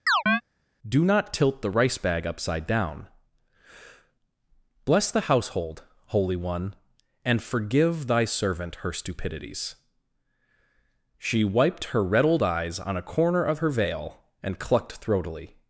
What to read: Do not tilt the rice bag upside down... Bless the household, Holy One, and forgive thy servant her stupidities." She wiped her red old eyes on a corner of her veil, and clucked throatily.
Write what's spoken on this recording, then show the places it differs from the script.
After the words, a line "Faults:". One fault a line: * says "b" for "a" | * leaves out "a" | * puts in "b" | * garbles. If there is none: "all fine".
Do not tilt the rice bag upside down... Bless the household, Holy One, and forgive thy servant her stupidities." She wiped her red old eyes on a corner of her veil, and clucked throatily.
Faults:
all fine